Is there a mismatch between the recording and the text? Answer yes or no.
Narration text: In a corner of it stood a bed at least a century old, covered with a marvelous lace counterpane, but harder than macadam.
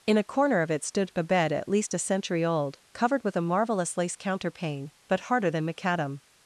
no